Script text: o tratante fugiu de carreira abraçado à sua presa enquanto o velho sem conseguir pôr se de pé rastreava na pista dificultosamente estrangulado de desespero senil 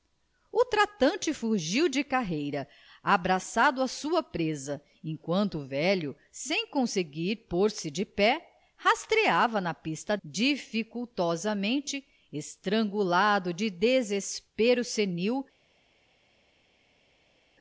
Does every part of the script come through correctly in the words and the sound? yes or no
yes